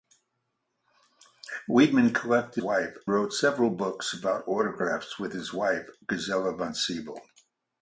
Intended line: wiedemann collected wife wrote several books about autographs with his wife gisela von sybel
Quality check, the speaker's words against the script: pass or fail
pass